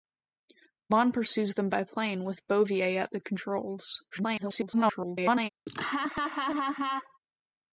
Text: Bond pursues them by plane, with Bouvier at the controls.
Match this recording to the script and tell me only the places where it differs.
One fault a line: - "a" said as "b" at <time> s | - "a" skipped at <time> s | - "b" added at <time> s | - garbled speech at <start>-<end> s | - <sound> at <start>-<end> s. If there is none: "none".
- garbled speech at 4.1-5.5 s
- laugh at 5.7-7.2 s